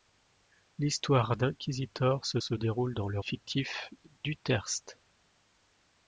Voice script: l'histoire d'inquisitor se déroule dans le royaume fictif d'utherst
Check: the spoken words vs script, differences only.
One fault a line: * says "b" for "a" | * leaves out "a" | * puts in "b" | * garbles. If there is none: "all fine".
* puts in "se"
* leaves out "royaume"